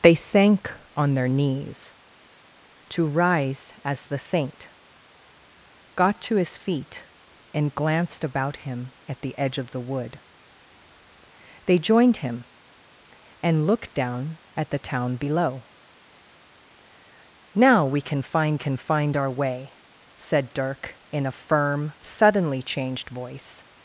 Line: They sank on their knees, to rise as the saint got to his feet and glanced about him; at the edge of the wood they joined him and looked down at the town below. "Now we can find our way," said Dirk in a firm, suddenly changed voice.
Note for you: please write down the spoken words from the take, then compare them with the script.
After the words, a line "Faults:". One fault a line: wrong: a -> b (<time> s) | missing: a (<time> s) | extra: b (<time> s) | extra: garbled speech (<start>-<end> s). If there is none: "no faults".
They sank on their knees, to rise as the saint got to his feet and glanced about him; at the edge of the wood they joined him and looked down at the town below. "Now we can find can find our way," said Dirk in a firm, suddenly changed voice.
Faults:
extra: can find (18.6 s)